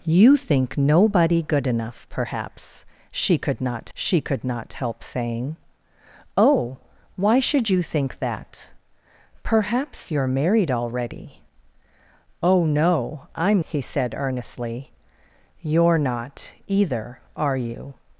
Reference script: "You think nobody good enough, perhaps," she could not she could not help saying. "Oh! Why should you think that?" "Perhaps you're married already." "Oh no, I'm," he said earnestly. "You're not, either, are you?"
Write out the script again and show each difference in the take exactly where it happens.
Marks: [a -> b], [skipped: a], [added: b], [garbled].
"You think nobody good enough, perhaps," she could not she could not help saying. "Oh! Why should you think that?" "Perhaps you're married already." "Oh no, I'm," he said earnestly. "You're not, either, are you?"